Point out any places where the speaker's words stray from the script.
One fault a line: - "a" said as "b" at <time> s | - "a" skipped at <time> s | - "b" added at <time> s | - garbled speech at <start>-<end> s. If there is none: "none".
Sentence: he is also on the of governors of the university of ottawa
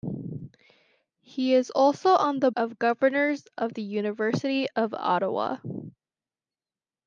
none